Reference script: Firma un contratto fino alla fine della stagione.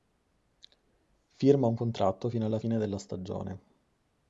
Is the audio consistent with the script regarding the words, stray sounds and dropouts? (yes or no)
yes